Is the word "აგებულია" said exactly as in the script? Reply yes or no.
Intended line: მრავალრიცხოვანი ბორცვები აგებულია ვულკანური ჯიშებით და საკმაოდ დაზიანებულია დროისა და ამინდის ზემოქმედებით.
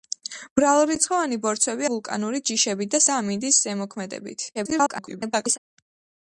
no